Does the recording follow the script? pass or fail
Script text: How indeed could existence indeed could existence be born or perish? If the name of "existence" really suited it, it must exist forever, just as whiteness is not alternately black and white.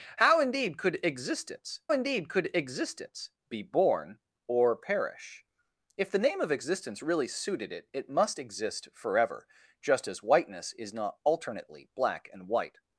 pass